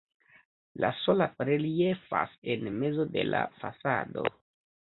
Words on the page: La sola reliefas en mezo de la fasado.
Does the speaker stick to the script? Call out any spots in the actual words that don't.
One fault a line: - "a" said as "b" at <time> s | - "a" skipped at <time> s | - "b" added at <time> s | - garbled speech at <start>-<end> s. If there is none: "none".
none